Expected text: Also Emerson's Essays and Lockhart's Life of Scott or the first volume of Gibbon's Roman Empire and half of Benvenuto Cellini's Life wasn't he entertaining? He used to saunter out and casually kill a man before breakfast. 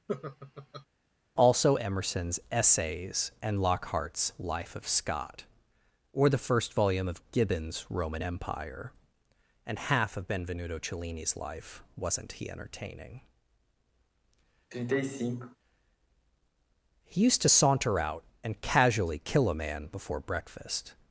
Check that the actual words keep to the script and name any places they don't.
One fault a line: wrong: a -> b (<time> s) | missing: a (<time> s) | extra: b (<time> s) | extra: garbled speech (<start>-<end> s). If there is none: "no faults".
no faults